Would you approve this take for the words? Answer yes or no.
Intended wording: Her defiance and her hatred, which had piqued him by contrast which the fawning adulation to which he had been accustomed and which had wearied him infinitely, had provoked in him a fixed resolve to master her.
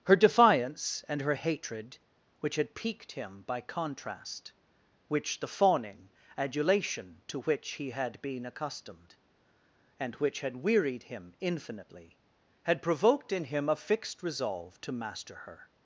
yes